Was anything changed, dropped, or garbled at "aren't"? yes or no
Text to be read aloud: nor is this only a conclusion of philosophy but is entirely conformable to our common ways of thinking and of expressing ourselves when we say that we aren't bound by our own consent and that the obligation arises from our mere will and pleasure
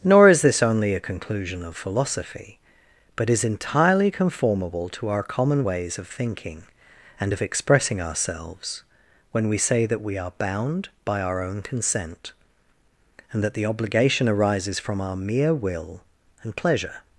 yes